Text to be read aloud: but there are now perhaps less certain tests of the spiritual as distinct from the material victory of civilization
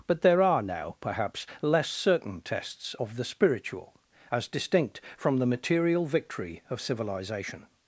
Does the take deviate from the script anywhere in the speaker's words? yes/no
no